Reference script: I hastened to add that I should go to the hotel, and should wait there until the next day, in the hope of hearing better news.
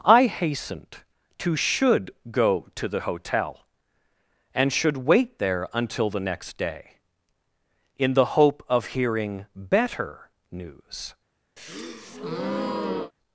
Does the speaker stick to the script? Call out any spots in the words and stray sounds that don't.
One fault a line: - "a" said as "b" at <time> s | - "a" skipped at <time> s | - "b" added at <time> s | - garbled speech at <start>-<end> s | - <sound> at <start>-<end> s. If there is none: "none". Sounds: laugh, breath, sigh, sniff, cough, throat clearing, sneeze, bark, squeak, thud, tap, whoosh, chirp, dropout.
- "add that I" skipped at 1.6 s
- breath at 11.6-13.1 s